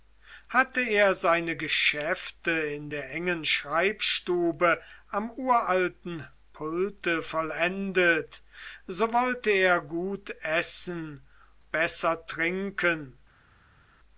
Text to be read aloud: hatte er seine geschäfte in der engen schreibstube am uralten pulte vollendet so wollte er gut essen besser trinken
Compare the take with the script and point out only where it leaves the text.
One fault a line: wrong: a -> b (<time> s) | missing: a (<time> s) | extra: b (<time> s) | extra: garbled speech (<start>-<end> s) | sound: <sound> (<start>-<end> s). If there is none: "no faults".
no faults